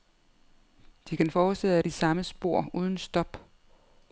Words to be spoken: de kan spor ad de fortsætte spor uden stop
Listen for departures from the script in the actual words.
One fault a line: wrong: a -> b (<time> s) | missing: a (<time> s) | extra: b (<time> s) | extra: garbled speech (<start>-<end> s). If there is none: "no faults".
wrong: spor -> fortsætte (1.3 s)
wrong: fortsætte -> samme (1.9 s)